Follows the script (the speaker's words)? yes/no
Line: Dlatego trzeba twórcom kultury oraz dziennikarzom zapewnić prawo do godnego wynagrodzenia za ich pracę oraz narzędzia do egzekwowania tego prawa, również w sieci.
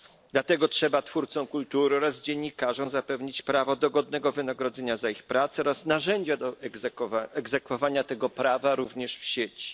yes